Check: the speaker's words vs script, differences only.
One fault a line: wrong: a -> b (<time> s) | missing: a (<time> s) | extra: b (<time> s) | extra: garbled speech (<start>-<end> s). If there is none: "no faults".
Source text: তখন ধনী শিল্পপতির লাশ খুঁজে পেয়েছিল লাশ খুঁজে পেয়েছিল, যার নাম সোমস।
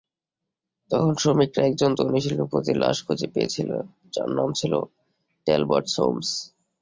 extra: শ্রমিকরা একজন (1.1 s)
wrong: লাশ খুঁজে পেয়েছিল যার নাম -> যার নাম ছিল ট্যালবট (4.1 s)